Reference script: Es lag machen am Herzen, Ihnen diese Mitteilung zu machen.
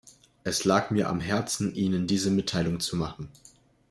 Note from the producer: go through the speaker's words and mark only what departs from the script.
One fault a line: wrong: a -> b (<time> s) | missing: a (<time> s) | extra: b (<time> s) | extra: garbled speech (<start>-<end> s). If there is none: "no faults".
wrong: machen -> mir (0.9 s)